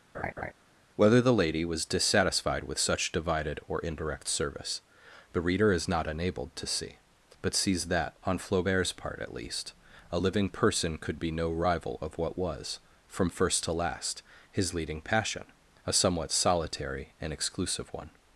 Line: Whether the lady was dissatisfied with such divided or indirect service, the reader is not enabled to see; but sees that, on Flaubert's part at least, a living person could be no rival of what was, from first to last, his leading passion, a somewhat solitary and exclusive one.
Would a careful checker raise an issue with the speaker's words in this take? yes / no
no